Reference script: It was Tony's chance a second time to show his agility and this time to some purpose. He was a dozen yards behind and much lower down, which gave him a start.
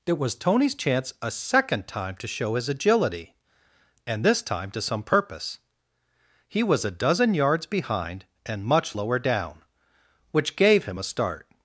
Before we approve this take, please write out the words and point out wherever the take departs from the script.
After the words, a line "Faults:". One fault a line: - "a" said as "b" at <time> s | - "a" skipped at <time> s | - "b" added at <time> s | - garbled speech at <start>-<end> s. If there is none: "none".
It was Tony's chance a second time to show his agility and this time to some purpose. He was a dozen yards behind and much lower down, which gave him a start.
Faults:
none